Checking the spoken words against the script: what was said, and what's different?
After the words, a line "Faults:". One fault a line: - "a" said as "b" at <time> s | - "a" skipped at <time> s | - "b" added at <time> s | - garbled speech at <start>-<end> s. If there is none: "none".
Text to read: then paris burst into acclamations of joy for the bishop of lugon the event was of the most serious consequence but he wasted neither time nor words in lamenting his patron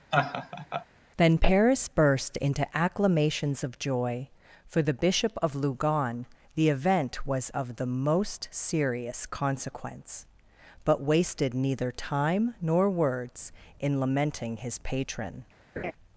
then paris burst into acclamations of joy for the bishop of lugon the event was of the most serious consequence but wasted neither time nor words in lamenting his patron
Faults:
- "he" skipped at 11.0 s